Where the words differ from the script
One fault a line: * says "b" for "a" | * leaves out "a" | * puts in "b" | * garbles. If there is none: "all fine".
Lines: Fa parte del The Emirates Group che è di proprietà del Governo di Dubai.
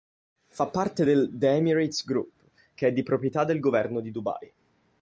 all fine